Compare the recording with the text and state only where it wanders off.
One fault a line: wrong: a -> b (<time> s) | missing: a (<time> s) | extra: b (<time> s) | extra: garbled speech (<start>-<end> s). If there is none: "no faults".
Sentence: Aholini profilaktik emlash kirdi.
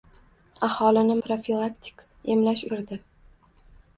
no faults